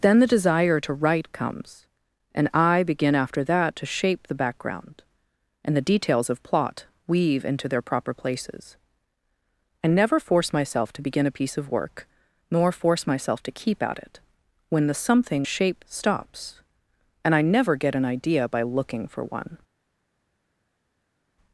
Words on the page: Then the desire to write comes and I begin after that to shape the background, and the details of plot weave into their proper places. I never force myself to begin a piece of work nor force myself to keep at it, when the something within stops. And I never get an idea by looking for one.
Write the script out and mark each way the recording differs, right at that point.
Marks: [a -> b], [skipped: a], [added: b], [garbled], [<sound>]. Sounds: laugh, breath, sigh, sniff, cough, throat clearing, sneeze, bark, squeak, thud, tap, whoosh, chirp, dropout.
Then the desire to write comes and I begin after that to shape the background, and the details of plot weave into their proper places. I never force myself to begin a piece of work nor force myself to keep at it, when the something [within -> shape] stops. And I never get an idea by looking for one.